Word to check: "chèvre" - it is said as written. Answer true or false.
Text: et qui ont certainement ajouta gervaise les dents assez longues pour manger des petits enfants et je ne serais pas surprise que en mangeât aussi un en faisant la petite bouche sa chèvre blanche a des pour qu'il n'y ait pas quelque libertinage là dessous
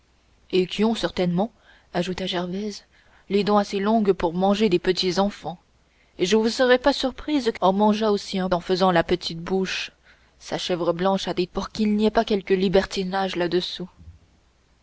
true